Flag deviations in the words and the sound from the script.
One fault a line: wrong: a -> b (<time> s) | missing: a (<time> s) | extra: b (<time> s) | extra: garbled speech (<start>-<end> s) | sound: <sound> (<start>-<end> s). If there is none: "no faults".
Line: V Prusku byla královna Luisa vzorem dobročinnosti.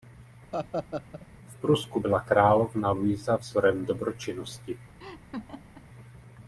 sound: laugh (0.5-1.3 s)
sound: laugh (5.0-5.9 s)